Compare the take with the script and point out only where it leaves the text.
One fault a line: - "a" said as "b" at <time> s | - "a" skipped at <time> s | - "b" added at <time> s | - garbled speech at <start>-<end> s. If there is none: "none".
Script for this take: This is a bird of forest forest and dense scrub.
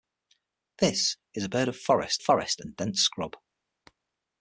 none